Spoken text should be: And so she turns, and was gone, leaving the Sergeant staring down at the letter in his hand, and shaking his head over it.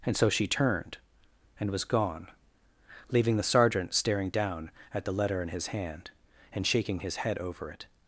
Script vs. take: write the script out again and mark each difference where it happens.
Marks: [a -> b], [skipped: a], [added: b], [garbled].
And so she [turns, -> turned] and was gone, leaving the Sergeant staring down at the letter in his hand, and shaking his head over it.